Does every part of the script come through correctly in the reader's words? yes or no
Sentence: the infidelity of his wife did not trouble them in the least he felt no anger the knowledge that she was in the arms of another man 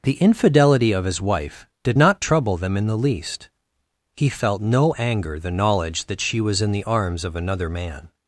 yes